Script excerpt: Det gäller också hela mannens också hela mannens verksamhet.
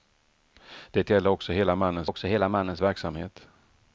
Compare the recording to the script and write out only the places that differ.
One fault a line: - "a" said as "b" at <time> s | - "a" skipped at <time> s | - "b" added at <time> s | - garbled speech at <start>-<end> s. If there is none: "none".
none